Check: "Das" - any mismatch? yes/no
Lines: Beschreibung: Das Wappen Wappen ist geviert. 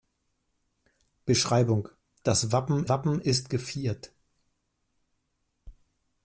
no